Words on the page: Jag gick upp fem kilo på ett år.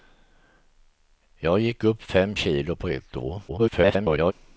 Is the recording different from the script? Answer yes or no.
yes